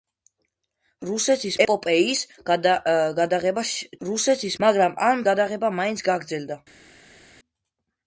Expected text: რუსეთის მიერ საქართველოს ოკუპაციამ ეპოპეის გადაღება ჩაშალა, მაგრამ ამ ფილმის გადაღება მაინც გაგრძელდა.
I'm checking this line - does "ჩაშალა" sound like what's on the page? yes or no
no